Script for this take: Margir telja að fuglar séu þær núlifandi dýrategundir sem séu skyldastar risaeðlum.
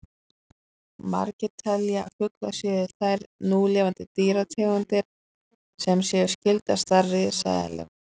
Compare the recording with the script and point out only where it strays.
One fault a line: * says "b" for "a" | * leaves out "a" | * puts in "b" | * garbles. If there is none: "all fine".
all fine